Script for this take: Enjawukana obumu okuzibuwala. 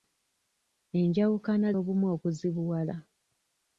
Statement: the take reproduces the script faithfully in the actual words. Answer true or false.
true